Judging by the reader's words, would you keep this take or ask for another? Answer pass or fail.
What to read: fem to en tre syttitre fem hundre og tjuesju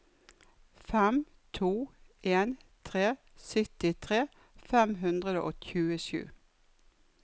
pass